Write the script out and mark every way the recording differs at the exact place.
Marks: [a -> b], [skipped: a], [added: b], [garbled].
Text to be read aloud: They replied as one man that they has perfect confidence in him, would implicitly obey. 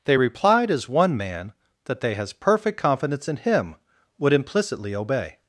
They replied as one man that they has perfect confidence in him, would implicitly obey.